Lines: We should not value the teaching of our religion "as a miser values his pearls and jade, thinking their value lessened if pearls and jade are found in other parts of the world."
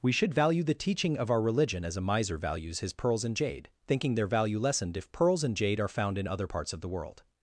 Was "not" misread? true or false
true